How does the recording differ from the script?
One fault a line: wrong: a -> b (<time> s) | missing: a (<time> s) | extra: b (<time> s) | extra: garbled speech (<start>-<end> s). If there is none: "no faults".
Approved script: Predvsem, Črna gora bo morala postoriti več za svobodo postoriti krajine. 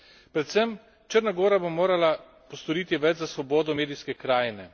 wrong: postoriti -> medijske (3.7 s)